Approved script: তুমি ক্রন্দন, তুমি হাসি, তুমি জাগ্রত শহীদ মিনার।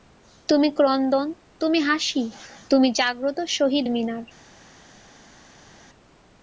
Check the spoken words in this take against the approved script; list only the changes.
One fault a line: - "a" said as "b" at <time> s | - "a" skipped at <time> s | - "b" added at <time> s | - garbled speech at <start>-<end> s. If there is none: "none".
none